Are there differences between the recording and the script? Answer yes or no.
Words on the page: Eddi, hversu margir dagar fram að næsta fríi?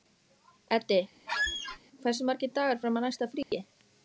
no